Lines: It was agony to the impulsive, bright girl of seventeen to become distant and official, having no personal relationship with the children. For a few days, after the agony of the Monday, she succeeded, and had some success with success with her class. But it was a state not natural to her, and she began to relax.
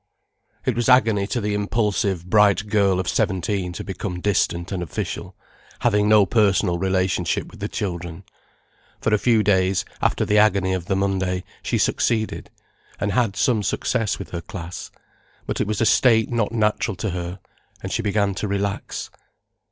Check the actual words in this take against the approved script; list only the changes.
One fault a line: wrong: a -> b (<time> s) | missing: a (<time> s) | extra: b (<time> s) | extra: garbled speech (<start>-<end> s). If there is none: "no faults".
missing: success with (14.3 s)